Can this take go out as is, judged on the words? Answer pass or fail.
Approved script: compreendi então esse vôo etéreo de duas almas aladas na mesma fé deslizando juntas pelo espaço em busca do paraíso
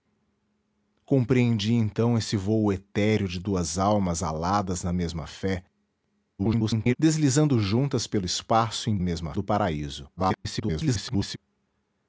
fail